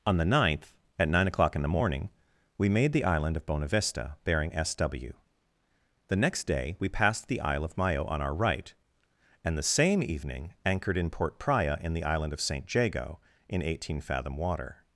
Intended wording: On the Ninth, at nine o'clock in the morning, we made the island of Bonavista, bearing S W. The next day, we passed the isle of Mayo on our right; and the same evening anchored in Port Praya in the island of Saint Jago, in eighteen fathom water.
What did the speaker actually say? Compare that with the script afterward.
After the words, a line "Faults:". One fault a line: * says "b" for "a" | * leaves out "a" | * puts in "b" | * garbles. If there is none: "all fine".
On the Ninth, at nine o'clock in the morning, we made the island of Bonavista, bearing S W. The next day, we passed the isle of Mayo on our right; and the same evening anchored in Port Praya in the island of Saint Jago, in eighteen fathom water.
Faults:
all fine